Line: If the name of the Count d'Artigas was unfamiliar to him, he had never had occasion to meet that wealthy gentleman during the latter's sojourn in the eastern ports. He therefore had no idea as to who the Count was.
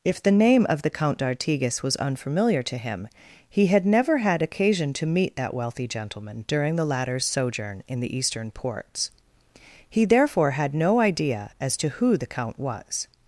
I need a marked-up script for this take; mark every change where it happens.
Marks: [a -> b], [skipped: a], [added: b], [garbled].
If the name of the Count d'Artigas was unfamiliar to him, he had never had occasion to meet that wealthy gentleman during the latter's sojourn in the eastern ports. He therefore had no idea as to who the Count was.